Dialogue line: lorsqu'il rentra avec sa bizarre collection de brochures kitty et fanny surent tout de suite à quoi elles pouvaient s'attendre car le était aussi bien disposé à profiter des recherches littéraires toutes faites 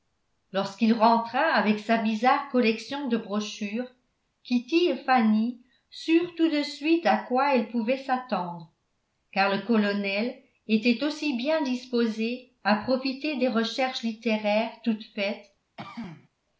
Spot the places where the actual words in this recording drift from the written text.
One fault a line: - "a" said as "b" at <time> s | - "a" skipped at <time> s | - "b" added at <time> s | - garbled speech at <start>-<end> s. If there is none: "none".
- "colonel" added at 9.6 s